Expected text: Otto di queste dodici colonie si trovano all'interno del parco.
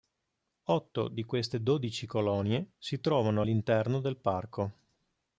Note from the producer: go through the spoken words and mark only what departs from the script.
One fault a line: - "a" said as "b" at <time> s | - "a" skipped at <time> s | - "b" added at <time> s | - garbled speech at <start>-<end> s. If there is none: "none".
none